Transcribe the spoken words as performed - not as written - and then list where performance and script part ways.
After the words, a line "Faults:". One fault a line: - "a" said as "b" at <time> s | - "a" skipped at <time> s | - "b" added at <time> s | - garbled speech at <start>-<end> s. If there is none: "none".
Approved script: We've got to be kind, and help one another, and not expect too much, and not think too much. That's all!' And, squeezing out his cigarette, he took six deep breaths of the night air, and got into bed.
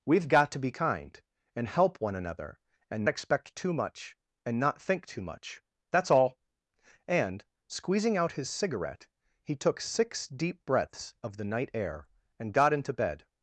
We've got to be kind, and help one another, and expect too much, and not think too much. That's all!' And, squeezing out his cigarette, he took six deep breaths of the night air, and got into bed.
Faults:
- "not" skipped at 3.0 s